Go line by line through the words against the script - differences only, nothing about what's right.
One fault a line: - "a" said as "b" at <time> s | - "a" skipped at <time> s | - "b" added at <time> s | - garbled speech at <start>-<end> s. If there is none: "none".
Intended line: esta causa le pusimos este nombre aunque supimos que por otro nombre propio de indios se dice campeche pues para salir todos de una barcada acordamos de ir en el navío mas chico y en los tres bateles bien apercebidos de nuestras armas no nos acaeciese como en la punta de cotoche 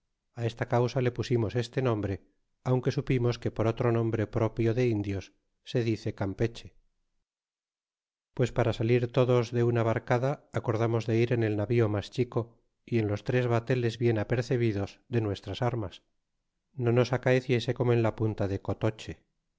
none